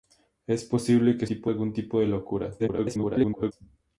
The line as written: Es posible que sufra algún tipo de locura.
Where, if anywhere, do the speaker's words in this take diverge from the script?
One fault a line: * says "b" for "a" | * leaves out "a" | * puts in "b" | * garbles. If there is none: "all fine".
* says "tipo" for "sufra"
* garbles